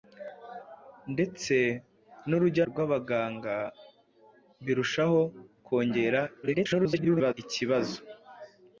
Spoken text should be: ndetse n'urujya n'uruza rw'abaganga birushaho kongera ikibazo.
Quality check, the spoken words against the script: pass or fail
fail